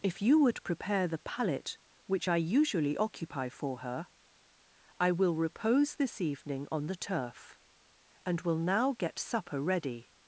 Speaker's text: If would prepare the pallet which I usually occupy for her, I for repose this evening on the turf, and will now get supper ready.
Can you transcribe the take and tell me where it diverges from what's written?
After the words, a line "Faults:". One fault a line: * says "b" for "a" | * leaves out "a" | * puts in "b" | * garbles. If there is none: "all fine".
If you would prepare the pallet which I usually occupy for her, I will repose this evening on the turf, and will now get supper ready.
Faults:
* puts in "you"
* says "will" for "for"